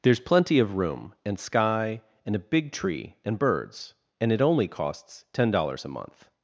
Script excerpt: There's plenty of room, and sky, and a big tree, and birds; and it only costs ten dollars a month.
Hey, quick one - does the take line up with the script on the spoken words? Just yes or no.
yes